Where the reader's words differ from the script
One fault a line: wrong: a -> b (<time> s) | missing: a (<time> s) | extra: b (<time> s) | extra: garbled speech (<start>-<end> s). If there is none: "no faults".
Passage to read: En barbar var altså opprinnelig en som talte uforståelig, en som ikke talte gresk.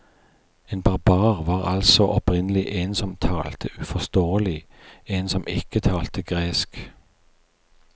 no faults